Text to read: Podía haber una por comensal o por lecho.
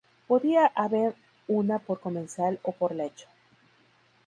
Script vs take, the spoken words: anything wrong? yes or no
no